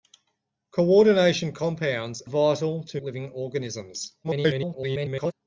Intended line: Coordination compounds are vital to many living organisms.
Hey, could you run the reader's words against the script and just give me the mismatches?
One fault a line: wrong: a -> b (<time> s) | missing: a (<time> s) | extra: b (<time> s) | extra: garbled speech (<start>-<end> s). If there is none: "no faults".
missing: are (2.2 s)
missing: many (3.0 s)
extra: garbled speech (4.2-5.3 s)